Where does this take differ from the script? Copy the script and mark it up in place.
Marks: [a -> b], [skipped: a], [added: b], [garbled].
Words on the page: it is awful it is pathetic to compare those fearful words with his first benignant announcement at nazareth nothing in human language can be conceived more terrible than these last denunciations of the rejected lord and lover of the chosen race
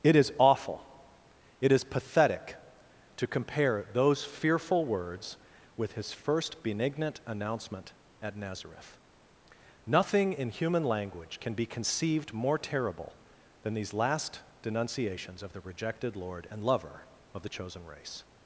it is awful it is pathetic to compare those fearful words with his first benignant announcement at nazareth nothing in human language can be conceived more terrible than these last denunciations of the rejected lord and lover of the chosen race